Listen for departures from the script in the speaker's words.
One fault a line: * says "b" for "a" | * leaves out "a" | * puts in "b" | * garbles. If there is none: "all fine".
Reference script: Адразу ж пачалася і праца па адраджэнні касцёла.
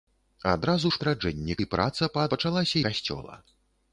* says "адраджэнні" for "пачалася"
* says "пачалася" for "адраджэнні"